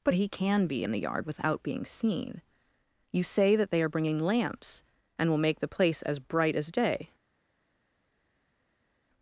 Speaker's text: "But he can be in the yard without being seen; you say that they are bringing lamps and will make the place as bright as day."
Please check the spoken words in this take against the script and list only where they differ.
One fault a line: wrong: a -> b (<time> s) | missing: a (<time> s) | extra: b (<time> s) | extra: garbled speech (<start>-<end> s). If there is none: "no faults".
no faults